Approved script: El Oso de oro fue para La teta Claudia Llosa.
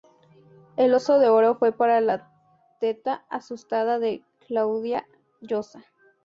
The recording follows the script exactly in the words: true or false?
false